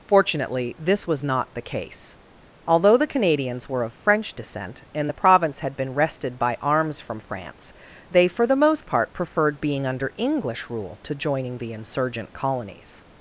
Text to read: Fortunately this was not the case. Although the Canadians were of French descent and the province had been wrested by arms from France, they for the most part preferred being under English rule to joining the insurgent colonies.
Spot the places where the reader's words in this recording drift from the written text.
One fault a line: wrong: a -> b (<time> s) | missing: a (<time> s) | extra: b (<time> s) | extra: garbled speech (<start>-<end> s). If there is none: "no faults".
no faults